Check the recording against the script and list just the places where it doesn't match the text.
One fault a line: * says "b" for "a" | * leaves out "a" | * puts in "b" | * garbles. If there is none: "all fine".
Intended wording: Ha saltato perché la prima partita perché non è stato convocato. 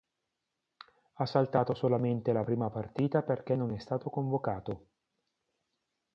* says "solamente" for "perché"